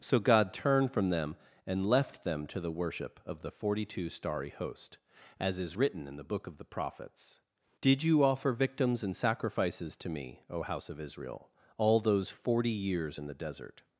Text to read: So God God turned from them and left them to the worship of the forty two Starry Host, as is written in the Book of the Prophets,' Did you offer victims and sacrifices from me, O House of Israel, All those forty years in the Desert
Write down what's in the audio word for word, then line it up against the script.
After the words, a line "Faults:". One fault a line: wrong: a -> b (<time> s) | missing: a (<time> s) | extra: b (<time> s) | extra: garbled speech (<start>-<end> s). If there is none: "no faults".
So God turned from them and left them to the worship of the forty two Starry Host, as is written in the Book of the Prophets,' Did you offer victims and sacrifices to me, O House of Israel, All those forty years in the Desert
Faults:
missing: God (0.5 s)
wrong: from -> to (10.0 s)